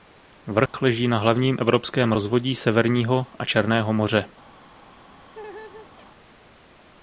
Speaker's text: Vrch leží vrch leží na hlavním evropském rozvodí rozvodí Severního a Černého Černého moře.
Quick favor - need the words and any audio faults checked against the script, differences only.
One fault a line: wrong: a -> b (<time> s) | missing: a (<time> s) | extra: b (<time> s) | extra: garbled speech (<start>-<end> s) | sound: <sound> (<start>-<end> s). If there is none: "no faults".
sound: dropout (0.7-0.7 s)
missing: vrch leží (1.1 s)
missing: rozvodí (2.5 s)
missing: Černého (3.9 s)
sound: laugh (5.3-6.1 s)